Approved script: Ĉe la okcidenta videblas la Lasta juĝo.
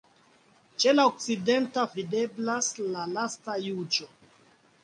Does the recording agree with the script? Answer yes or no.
yes